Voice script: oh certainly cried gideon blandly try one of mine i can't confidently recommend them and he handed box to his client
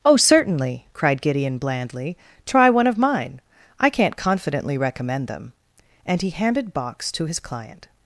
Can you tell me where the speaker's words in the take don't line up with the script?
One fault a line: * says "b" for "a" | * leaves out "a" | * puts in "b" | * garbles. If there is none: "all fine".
all fine